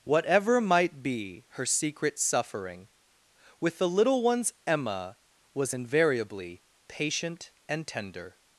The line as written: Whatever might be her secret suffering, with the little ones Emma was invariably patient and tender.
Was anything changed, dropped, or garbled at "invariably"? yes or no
no